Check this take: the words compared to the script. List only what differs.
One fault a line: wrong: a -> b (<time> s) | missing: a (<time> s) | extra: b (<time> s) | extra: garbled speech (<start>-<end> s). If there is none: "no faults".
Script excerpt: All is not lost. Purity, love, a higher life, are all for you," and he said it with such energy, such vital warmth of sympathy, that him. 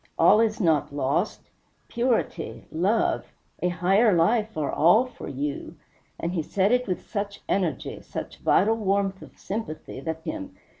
no faults